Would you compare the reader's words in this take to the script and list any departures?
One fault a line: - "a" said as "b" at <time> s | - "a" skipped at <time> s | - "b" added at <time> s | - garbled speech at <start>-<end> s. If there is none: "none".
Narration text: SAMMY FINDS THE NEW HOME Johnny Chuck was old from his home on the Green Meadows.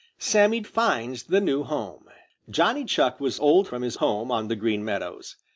none